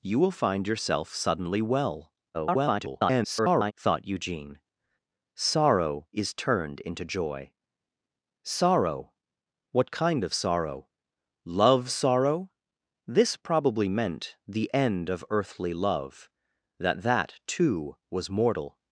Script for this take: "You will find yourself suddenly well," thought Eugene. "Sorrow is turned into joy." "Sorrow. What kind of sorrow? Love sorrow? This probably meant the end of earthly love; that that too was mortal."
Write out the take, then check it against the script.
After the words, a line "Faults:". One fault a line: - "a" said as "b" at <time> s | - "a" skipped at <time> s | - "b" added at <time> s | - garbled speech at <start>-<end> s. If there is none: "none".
"You will find yourself suddenly well," [garbled] thought Eugene. "Sorrow is turned into joy." "Sorrow. What kind of sorrow? Love sorrow? This probably meant the end of earthly love; that that too was mortal."
Faults:
- garbled speech at 2.3-3.7 s